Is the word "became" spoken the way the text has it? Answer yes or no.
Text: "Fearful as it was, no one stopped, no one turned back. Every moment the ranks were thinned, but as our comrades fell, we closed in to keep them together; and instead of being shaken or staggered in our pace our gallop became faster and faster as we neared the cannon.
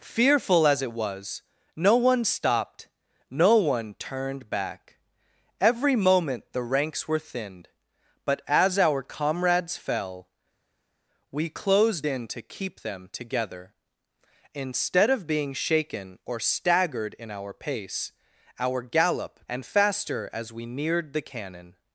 no